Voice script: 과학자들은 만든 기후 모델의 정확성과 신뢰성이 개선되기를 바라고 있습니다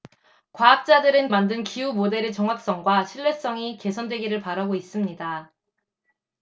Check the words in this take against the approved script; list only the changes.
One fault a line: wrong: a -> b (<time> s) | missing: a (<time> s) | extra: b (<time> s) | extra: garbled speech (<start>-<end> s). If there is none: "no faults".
no faults